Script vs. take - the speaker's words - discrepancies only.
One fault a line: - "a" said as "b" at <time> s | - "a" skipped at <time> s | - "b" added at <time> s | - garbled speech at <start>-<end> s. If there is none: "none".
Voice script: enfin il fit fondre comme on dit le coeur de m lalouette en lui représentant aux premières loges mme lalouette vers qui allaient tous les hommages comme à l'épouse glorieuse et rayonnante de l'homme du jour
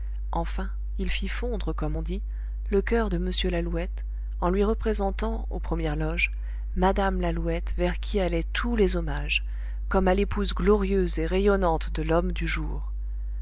none